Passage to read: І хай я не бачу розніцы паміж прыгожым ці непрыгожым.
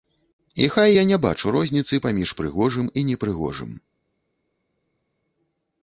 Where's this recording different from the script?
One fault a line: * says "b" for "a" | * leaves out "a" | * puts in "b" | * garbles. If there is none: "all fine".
* says "і" for "ці"